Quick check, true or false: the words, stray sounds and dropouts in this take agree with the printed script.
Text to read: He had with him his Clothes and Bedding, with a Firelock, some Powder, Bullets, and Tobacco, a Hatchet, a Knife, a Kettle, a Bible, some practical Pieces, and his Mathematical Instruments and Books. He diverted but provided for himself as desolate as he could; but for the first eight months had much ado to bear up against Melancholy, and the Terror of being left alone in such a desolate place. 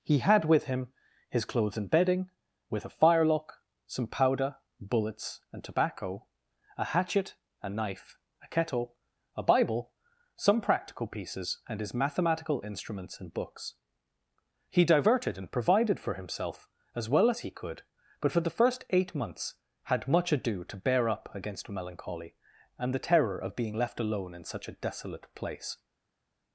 false